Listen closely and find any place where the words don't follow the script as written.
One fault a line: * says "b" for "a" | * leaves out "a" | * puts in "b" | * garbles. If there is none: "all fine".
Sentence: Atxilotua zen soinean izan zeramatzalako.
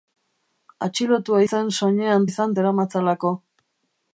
all fine